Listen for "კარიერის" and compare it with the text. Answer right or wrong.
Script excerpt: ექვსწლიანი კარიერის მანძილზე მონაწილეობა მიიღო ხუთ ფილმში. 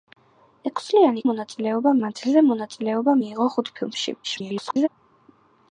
wrong